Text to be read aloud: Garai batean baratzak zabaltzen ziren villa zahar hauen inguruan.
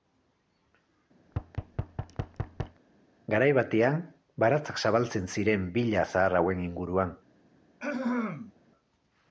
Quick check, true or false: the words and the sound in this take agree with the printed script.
false